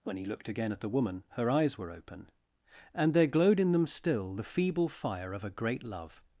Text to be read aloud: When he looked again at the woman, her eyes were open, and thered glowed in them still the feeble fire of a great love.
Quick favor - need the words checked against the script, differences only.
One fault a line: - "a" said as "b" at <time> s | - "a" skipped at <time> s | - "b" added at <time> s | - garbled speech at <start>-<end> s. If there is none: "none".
- "thered" said as "there" at 3.1 s